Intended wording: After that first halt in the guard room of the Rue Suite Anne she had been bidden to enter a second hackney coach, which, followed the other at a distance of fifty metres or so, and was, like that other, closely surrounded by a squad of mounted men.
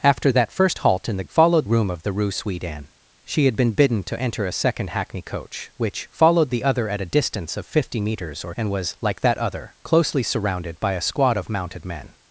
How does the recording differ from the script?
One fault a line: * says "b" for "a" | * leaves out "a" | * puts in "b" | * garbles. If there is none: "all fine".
* says "followed" for "guard"
* leaves out "so"